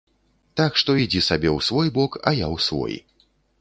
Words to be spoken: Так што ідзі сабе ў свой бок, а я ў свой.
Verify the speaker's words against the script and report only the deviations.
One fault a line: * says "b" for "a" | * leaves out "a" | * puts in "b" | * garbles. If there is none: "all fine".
all fine